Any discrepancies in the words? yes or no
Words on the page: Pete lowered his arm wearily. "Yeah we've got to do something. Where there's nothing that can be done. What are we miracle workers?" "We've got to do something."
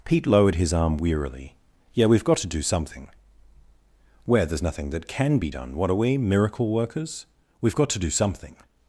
no